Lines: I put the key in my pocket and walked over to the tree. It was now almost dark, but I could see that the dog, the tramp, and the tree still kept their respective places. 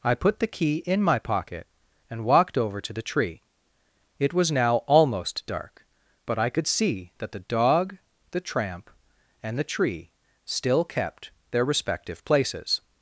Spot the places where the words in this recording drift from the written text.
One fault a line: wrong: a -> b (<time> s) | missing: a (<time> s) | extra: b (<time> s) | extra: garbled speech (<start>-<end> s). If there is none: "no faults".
no faults